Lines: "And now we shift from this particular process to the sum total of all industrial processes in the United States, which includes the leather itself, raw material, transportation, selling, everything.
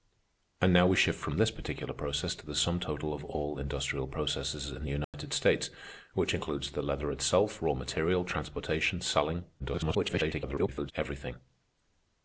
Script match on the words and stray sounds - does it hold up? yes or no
no